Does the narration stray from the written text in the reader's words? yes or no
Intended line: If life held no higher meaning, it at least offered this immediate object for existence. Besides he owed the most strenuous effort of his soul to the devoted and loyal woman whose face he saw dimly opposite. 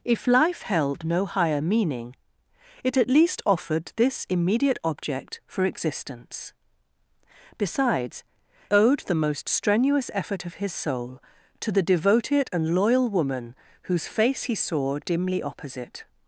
yes